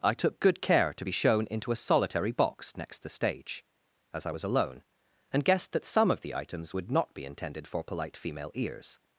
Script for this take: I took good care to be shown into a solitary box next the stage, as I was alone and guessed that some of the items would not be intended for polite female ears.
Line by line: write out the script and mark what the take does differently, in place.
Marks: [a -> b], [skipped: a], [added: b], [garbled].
I took good care to be shown into a solitary box next the stage, as I was alone and guessed that some of the items would not be intended for polite female ears.